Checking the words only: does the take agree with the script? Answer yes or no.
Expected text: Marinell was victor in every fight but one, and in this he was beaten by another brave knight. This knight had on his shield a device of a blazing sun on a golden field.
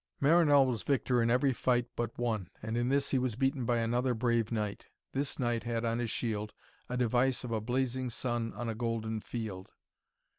yes